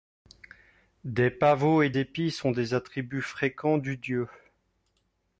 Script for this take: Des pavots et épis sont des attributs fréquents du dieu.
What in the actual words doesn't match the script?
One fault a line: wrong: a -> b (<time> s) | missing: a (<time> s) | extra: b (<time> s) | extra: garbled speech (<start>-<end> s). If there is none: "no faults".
no faults